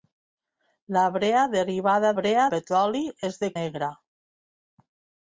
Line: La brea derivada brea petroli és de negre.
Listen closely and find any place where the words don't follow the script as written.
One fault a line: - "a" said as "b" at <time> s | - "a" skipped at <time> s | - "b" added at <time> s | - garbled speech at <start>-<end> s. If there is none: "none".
none